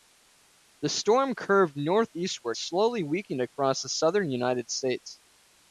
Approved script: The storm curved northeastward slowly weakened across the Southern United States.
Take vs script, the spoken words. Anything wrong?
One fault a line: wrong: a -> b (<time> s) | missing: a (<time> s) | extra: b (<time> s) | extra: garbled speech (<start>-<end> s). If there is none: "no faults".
no faults